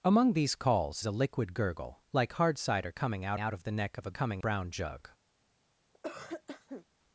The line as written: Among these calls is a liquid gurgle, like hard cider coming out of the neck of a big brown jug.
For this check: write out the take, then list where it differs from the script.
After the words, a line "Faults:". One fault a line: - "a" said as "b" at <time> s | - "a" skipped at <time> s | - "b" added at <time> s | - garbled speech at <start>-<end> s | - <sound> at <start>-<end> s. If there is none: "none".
Among these calls a liquid gurgle, like hard cider coming out out of the neck of a coming brown jug.
Faults:
- "is" skipped at 1.0 s
- "out" added at 3.4 s
- "big" said as "coming" at 4.1 s
- cough at 5.9-6.8 s